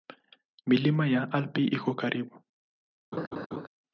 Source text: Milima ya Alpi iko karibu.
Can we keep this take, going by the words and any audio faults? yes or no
no